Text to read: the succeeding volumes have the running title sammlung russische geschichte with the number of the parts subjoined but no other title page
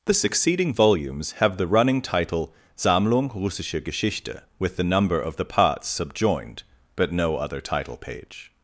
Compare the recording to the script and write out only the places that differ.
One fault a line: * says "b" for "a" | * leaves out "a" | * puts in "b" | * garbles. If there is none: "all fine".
all fine